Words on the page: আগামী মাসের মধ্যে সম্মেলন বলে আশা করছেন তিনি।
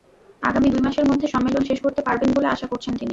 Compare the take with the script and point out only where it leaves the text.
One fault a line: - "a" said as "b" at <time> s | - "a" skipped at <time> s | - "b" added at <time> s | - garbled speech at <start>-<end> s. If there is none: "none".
- "দুই" added at 0.7 s
- "শেষ করতে পারবেন" added at 1.7 s